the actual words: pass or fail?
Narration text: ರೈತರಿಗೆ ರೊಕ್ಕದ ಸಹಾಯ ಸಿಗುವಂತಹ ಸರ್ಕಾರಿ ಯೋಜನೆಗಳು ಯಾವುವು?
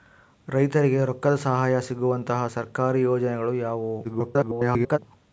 fail